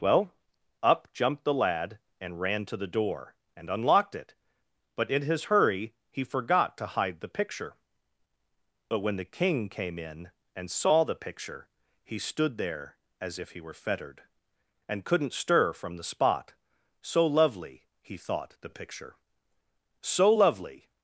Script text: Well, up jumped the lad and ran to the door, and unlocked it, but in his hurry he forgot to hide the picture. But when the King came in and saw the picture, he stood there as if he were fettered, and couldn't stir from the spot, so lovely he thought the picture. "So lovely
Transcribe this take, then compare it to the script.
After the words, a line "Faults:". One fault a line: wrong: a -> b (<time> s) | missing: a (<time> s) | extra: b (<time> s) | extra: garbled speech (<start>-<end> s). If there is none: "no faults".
Well, up jumped the lad and ran to the door, and unlocked it, but in his hurry he forgot to hide the picture. But when the King came in and saw the picture, he stood there as if he were fettered, and couldn't stir from the spot, so lovely he thought the picture. "So lovely
Faults:
no faults